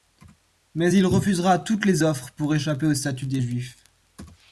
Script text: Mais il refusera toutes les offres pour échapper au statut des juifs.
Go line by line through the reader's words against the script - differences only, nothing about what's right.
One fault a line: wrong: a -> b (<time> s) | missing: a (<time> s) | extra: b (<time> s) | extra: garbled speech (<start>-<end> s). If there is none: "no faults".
no faults